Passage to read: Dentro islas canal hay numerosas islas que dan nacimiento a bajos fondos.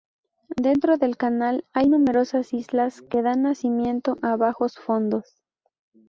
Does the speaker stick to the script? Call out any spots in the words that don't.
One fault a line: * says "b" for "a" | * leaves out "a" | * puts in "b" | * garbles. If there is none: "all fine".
* says "del" for "islas"